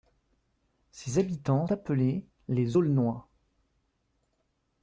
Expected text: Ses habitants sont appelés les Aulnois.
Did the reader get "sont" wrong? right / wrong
wrong